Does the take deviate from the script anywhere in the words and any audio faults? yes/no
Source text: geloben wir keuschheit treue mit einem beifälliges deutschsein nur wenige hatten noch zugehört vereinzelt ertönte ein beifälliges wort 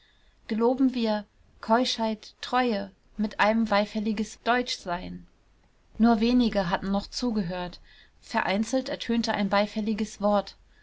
no